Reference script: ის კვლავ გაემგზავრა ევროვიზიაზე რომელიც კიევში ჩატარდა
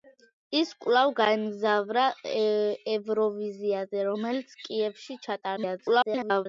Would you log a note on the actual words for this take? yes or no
yes